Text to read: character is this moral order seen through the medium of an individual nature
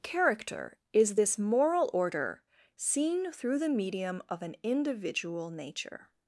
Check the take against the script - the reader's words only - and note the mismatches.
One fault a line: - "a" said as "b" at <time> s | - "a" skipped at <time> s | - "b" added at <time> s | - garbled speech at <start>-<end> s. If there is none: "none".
none